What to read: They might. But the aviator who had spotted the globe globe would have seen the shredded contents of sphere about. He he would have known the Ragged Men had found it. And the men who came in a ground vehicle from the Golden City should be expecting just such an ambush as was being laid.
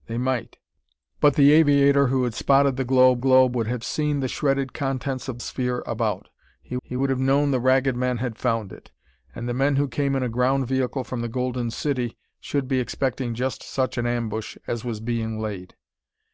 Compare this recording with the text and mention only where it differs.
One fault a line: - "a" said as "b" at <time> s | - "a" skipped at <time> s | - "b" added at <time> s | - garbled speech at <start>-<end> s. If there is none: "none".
none